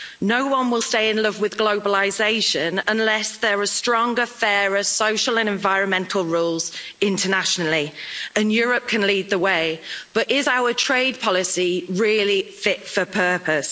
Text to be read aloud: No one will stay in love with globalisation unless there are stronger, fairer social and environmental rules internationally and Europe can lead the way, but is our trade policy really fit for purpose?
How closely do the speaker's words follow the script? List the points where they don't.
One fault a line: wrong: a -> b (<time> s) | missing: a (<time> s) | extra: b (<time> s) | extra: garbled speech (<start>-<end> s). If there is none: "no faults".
no faults